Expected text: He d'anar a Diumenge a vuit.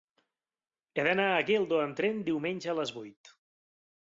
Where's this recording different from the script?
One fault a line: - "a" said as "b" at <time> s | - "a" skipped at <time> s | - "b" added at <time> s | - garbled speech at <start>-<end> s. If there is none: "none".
- "Geldo amb tren" added at 1.5 s
- "les" added at 2.8 s